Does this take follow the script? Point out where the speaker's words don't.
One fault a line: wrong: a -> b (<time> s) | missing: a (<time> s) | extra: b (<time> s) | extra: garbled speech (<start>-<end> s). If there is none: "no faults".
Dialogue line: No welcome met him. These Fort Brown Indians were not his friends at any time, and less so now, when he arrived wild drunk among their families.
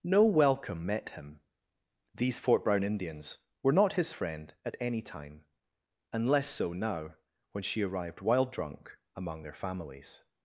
wrong: friends -> friend (4.1 s)
wrong: he -> she (7.6 s)